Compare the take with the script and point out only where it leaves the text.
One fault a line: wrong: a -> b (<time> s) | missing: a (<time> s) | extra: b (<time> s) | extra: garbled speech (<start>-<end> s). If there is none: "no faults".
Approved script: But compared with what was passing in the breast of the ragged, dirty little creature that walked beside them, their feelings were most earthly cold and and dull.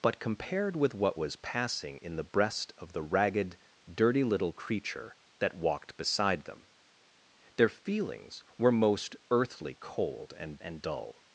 no faults